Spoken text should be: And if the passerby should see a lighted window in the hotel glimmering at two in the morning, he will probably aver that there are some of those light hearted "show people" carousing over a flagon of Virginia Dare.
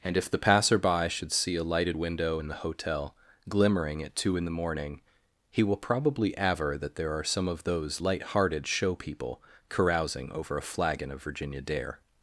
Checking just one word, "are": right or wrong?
right